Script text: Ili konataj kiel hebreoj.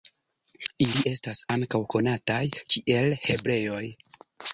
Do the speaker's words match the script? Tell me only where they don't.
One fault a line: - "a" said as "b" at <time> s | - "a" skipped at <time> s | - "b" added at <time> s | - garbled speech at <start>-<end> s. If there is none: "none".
- "estas ankaŭ" added at 1.1 s